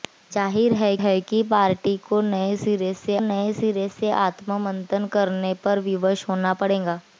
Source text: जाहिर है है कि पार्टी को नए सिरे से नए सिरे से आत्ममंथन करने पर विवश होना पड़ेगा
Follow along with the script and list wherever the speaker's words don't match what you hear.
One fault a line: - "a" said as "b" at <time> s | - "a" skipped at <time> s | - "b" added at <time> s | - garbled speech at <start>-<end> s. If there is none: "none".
none